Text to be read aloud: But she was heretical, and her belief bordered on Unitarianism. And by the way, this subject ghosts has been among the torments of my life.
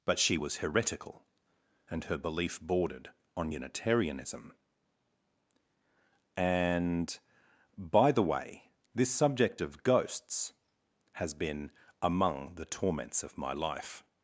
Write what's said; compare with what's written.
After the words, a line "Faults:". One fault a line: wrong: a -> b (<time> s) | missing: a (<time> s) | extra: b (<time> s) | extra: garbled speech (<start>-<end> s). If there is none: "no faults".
But she was heretical, and her belief bordered on Unitarianism. And by the way, this subject of ghosts has been among the torments of my life.
Faults:
extra: of (9.6 s)